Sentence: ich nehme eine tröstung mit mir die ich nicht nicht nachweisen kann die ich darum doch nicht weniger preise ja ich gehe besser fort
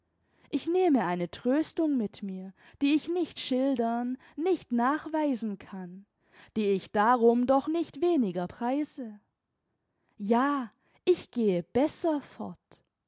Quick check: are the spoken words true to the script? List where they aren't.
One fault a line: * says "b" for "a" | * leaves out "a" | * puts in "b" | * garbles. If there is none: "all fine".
* puts in "schildern"